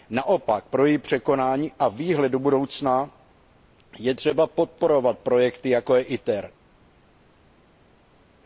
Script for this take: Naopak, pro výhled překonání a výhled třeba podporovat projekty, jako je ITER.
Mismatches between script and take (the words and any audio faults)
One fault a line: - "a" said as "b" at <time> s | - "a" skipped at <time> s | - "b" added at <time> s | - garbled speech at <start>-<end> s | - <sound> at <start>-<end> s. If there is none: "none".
- "výhled" said as "její" at 0.8 s
- "do budoucna je" added at 2.3 s